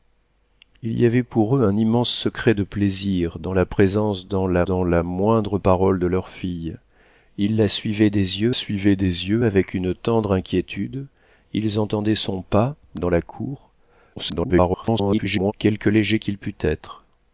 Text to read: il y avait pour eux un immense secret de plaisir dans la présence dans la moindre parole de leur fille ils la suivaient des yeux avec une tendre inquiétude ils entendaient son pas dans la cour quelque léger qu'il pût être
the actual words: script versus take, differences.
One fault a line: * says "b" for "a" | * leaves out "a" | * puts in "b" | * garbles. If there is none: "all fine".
* puts in "dans la"
* puts in "suivaient des yeux"
* garbles